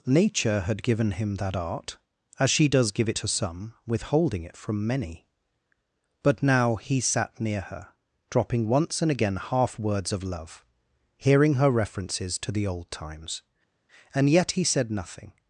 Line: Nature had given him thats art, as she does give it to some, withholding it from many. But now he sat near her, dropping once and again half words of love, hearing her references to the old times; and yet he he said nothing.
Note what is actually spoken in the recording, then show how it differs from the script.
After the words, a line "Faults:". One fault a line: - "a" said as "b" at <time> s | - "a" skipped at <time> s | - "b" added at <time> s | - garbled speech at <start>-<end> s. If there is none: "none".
Nature had given him that art, as she does give it to some, withholding it from many. But now he sat near her, dropping once and again half words of love, hearing her references to the old times; and yet he said nothing.
Faults:
- "thats" said as "that" at 1.4 s
- "he" skipped at 14.6 s